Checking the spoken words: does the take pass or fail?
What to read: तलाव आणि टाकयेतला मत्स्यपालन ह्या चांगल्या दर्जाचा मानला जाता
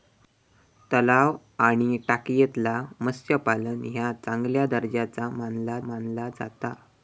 fail